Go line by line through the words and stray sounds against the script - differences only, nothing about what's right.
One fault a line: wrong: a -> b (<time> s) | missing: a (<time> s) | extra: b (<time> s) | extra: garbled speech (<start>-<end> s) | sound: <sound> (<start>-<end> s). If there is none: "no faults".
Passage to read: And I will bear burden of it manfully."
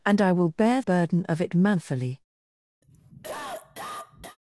sound: cough (2.8-4.4 s)